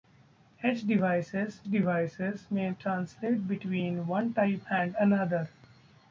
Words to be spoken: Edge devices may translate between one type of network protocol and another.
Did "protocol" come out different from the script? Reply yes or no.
yes